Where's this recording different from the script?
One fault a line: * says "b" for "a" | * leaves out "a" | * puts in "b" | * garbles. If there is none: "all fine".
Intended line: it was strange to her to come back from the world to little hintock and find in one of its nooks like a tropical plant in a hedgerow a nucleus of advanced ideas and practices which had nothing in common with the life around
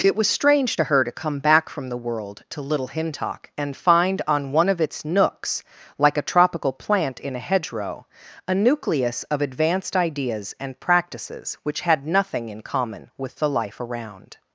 * says "on" for "in"